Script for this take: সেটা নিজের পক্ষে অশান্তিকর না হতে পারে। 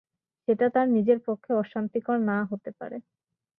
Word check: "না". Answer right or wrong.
right